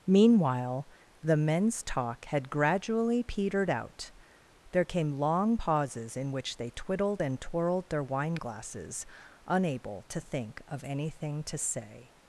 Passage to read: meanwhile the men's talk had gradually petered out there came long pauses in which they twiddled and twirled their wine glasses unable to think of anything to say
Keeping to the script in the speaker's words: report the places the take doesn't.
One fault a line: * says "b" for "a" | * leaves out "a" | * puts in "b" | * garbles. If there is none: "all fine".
all fine